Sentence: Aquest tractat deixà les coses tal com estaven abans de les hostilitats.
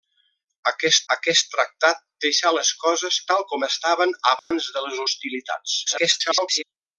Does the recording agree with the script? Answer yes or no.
no